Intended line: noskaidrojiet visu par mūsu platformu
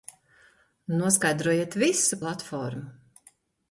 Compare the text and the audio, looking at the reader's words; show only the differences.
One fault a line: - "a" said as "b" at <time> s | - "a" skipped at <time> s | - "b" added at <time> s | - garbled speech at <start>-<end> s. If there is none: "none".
- "par mūsu" skipped at 2.2 s